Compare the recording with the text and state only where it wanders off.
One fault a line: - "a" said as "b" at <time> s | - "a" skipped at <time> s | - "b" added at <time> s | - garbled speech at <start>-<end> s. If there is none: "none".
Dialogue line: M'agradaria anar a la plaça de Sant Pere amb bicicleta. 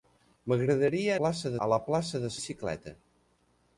- "anar" said as "plaça" at 1.2 s
- "Sant Pere amb" skipped at 2.3 s